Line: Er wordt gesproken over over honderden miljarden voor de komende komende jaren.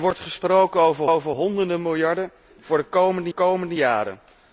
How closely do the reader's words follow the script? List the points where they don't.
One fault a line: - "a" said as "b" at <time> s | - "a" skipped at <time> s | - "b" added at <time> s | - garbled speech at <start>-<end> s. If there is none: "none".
none